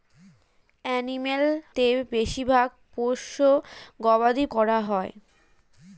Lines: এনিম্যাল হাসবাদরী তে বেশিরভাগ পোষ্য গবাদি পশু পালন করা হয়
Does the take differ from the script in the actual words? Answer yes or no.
yes